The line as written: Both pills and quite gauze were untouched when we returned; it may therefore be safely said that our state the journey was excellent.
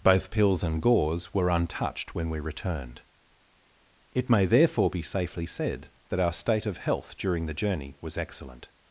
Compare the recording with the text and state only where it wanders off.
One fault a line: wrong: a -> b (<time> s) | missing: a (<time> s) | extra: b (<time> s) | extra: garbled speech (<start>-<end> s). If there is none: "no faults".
missing: quite (0.8 s)
extra: of health during (6.7 s)